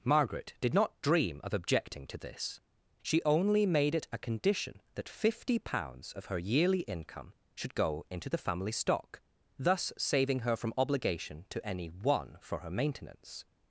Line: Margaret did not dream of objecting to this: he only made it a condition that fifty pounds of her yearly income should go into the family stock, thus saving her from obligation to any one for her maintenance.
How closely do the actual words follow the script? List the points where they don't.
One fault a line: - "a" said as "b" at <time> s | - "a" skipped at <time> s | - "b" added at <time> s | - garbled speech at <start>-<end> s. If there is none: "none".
- "he" said as "she" at 3.0 s